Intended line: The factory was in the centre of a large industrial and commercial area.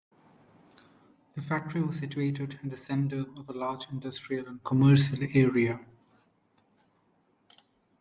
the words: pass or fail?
fail